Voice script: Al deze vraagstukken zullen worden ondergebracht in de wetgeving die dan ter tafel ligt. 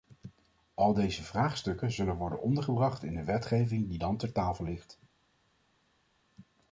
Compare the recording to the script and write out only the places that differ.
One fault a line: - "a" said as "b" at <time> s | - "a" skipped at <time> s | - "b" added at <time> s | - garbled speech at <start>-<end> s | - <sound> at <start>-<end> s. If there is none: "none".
none